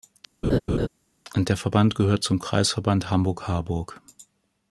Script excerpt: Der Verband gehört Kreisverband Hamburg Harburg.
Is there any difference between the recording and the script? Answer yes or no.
yes